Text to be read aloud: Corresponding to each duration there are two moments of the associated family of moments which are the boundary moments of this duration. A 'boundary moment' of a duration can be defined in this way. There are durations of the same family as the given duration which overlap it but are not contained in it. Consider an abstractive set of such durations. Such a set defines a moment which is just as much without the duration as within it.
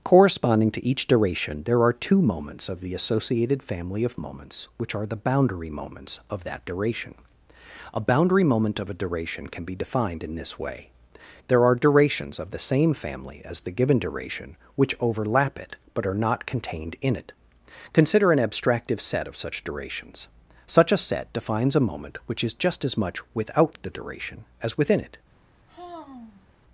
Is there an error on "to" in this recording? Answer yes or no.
no